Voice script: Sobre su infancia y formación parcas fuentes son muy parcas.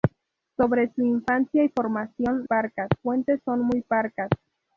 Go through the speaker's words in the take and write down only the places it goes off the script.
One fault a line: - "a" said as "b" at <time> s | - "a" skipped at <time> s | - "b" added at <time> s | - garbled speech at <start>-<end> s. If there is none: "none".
none